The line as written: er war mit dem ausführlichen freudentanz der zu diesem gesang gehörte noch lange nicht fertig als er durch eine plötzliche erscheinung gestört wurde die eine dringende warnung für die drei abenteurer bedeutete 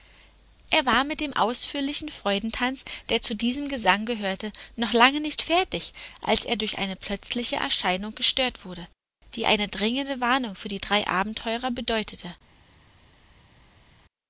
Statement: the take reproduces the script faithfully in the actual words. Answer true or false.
true